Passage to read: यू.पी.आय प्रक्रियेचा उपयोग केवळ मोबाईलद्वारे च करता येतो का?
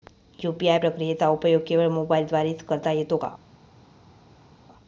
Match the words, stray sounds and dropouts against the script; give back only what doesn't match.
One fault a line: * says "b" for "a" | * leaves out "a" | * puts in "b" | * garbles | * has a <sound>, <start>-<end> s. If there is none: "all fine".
all fine